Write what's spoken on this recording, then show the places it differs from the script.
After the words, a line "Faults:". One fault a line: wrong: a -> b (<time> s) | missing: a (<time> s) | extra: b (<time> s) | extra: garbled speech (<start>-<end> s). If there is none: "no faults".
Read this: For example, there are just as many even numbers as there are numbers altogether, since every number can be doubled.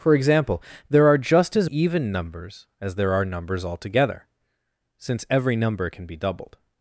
For example, there are just as even numbers as there are numbers altogether, since every number can be doubled.
Faults:
missing: many (1.7 s)